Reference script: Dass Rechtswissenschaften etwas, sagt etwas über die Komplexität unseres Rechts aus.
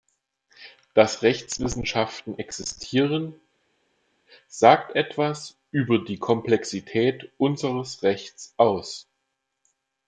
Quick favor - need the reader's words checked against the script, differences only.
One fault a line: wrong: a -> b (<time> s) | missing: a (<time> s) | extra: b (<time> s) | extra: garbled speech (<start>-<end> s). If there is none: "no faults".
wrong: etwas -> existieren (2.4 s)